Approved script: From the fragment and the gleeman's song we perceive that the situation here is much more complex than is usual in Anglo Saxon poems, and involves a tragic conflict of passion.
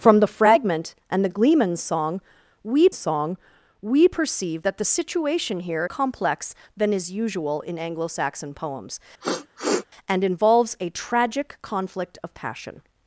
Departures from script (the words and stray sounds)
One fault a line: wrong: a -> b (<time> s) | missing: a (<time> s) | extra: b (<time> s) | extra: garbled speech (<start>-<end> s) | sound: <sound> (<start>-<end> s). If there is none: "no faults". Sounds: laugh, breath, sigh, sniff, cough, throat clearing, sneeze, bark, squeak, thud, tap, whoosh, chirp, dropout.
extra: song we (2.9 s)
missing: is much more (5.9 s)
sound: sniff (9.2-9.9 s)